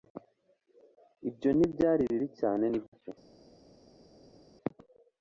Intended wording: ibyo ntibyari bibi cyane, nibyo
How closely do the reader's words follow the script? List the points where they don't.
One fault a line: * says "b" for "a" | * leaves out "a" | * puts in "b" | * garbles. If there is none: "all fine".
all fine